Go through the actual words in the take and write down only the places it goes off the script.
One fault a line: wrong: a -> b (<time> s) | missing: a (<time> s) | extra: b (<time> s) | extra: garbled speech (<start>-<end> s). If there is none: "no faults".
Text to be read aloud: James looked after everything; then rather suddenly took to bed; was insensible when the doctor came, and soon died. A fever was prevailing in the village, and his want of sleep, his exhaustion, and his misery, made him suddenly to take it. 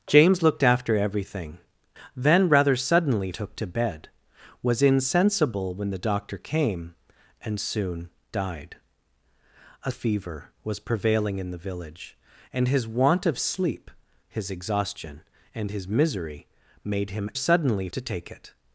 no faults